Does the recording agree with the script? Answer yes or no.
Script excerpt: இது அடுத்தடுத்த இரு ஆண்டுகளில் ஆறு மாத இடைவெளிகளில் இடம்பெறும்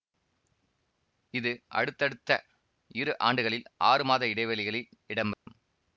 yes